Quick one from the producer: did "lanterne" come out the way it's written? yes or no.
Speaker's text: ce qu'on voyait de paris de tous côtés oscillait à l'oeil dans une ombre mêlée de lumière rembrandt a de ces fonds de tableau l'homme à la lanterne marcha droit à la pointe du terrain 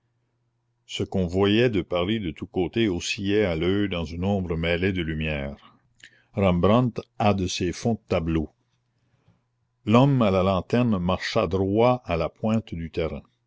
yes